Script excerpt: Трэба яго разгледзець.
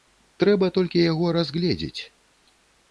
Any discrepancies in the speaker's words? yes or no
yes